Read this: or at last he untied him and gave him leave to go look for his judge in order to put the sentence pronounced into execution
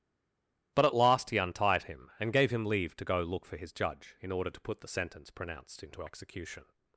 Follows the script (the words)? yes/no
no